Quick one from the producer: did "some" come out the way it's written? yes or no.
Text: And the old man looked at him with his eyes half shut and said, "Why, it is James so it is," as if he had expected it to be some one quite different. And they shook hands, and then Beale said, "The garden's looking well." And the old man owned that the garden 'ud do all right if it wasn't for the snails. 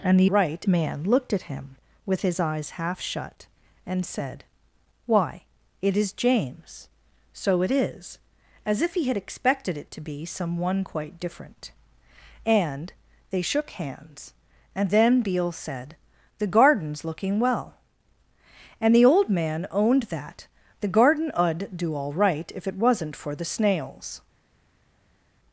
yes